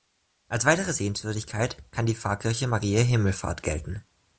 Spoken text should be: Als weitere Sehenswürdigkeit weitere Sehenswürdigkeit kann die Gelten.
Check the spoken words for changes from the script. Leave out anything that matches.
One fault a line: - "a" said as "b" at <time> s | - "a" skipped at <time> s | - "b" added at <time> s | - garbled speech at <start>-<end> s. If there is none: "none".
- "weitere Sehenswürdigkeit kann die" said as "kann die Pfarrkirche Mariä Himmelfahrt" at 1.9 s